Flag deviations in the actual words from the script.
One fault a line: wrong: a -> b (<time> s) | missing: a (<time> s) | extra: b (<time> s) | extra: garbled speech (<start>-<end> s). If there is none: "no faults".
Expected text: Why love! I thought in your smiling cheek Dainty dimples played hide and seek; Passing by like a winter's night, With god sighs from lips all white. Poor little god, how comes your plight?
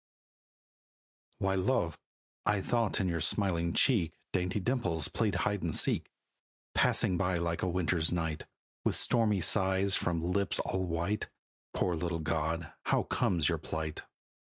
wrong: god -> stormy (9.0 s)